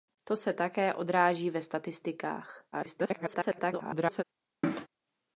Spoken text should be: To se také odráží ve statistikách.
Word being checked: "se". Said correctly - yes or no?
yes